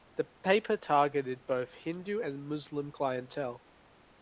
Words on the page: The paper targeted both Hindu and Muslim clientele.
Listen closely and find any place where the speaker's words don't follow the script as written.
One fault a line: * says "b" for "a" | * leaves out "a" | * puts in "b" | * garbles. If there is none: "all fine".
all fine